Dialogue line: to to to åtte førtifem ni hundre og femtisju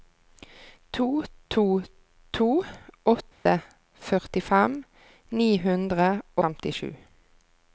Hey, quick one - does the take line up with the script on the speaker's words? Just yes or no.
no